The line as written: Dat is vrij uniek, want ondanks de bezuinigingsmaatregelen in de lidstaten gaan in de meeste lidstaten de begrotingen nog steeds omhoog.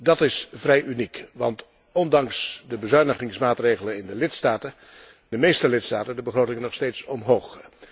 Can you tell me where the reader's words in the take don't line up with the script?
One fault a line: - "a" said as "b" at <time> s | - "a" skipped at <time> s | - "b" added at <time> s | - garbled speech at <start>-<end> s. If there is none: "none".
- "gaan in" skipped at 4.7 s